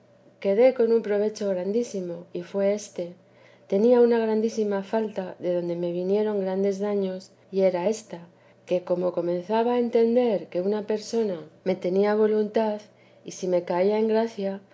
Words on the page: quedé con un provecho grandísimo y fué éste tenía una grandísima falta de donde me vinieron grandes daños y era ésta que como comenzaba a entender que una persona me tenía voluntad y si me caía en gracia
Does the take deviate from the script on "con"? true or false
false